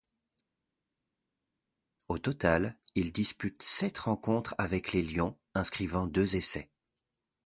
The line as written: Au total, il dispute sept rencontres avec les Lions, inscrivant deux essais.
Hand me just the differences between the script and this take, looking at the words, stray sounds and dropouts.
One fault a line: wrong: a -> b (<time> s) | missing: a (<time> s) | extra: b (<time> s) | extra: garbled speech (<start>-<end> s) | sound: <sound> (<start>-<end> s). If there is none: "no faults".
no faults